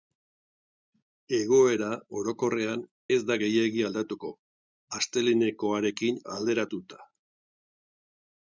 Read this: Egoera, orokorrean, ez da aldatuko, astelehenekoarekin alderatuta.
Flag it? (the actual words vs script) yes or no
yes